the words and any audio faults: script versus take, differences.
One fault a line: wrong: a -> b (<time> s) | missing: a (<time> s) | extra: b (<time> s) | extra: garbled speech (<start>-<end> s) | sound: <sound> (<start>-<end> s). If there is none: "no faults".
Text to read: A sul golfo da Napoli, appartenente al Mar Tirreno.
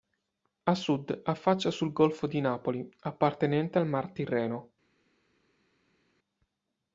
extra: sud affaccia (0.7 s)
wrong: da -> di (2.2 s)